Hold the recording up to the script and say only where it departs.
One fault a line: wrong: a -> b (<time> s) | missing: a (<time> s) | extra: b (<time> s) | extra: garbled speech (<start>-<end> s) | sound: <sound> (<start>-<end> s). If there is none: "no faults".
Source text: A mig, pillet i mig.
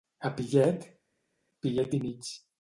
wrong: mig -> pillet (0.3 s)